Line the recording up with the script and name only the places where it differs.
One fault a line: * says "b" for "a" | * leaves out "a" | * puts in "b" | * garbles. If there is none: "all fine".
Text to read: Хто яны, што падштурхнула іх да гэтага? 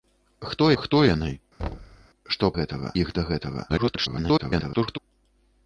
* puts in "хто"
* says "гэтага" for "падштурхнула"
* garbles